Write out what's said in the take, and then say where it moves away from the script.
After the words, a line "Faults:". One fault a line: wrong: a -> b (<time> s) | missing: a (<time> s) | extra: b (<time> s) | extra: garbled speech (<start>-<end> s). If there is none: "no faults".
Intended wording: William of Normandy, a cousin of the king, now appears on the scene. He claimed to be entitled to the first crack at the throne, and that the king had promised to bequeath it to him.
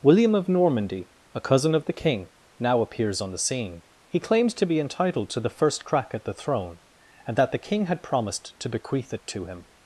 William of Normandy, a cousin of the king, now appears on the scene. He claims to be entitled to the first crack at the throne, and that the king had promised to bequeath it to him.
Faults:
wrong: claimed -> claims (4.2 s)